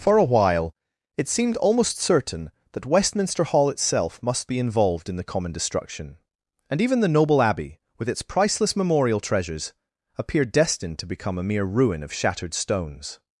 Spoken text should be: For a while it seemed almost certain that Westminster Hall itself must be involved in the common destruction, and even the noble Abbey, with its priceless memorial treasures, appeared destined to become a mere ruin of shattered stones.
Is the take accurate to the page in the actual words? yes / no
yes